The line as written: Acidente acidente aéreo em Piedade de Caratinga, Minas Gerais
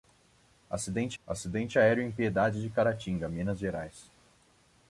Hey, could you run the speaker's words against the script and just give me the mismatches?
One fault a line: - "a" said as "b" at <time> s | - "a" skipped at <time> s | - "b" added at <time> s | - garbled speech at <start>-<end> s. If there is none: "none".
none